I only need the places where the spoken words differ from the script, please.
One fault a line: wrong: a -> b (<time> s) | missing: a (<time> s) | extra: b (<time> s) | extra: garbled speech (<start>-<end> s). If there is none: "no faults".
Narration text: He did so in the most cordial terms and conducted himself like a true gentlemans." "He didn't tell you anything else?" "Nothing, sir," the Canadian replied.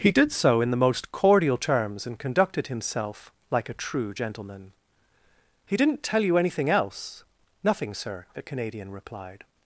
wrong: gentlemans -> gentleman (4.2 s)